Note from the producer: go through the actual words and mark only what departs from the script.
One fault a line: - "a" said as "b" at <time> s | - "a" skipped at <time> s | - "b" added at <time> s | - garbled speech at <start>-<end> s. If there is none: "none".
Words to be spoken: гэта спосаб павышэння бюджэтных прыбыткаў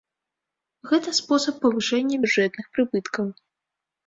none